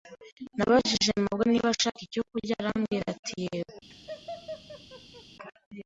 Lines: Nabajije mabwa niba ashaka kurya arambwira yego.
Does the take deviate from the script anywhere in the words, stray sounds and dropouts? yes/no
yes